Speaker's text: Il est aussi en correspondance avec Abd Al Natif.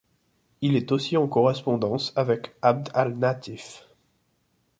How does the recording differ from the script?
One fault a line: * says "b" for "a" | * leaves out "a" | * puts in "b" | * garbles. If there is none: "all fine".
all fine